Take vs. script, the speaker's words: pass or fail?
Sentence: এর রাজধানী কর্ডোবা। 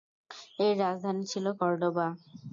fail